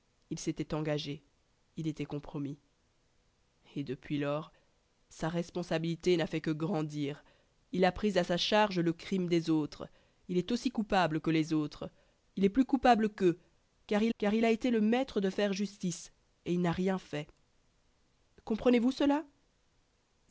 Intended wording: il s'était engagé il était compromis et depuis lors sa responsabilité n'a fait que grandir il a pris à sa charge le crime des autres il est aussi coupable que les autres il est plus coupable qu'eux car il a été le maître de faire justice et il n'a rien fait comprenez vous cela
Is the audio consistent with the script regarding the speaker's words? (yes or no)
no